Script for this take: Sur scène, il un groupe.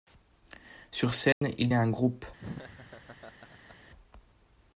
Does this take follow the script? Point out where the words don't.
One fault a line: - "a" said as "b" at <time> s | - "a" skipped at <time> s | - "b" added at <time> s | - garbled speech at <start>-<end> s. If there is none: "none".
none